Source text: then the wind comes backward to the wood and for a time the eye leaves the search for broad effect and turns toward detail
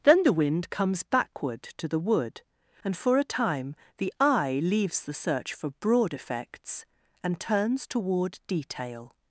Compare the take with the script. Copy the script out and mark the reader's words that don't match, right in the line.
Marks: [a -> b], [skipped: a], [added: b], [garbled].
then the wind comes backward to the wood and for a time the eye leaves the search for broad [effect -> effects] and turns toward detail